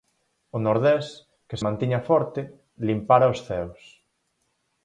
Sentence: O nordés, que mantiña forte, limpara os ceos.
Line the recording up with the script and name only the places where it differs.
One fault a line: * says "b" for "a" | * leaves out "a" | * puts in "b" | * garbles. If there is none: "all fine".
all fine